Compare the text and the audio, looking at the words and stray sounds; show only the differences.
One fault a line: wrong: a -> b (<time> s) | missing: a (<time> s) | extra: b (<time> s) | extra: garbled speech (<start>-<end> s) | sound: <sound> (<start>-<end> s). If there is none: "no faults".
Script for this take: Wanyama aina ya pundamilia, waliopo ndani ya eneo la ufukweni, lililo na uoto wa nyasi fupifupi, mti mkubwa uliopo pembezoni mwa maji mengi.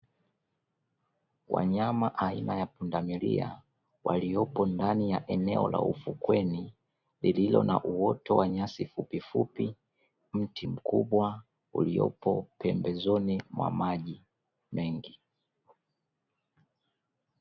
no faults